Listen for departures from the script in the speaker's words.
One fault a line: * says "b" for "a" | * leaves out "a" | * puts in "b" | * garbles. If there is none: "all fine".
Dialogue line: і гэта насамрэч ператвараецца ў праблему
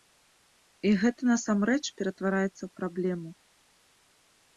all fine